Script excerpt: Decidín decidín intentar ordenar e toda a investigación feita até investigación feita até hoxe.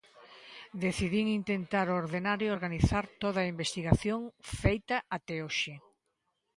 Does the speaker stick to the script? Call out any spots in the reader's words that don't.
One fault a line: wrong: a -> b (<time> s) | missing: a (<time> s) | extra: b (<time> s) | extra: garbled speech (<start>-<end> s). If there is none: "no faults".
missing: decidín (1.2 s)
extra: organizar (2.6 s)
missing: investigación feita até (5.4 s)